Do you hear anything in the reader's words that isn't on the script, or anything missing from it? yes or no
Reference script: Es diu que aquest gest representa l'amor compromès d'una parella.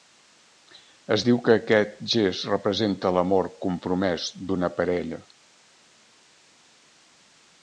no